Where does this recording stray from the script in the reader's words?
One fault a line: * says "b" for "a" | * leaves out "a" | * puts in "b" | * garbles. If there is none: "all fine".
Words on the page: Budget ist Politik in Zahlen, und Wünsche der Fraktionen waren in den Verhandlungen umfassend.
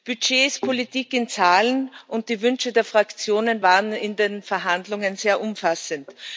* puts in "die"
* puts in "sehr"